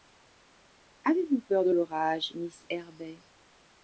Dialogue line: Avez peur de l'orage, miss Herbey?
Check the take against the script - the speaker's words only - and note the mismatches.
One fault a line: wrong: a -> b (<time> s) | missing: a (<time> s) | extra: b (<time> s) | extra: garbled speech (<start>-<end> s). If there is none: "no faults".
extra: vous (1.3 s)